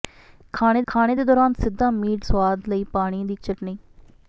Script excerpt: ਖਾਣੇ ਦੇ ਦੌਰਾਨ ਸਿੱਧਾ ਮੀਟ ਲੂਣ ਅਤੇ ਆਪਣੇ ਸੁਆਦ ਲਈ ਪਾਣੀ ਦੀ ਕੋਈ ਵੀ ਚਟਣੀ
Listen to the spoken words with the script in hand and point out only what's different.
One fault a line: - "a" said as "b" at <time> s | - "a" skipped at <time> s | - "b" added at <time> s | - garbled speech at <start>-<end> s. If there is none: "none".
- "ਖਾਣੇ" added at 0.9 s
- "ਲੂਣ ਅਤੇ ਆਪਣੇ" skipped at 2.3 s
- "ਕੋਈ ਵੀ" skipped at 3.4 s